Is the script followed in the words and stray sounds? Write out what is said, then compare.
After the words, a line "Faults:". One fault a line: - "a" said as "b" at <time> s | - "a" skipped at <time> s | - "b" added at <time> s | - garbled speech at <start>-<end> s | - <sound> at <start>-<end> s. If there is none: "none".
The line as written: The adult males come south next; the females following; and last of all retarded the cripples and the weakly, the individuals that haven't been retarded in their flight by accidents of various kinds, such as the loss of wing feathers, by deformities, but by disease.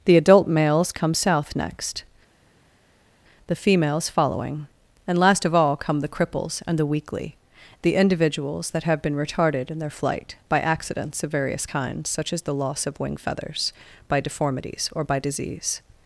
The adult males come south next; the females following; and last of all come the cripples and the weakly, the individuals that have been retarded in their flight by accidents of various kinds, such as the loss of wing feathers, by deformities, or by disease.
Faults:
- "retarded" said as "come" at 5.8 s
- "haven't" said as "have" at 8.8 s
- "but" said as "or" at 14.9 s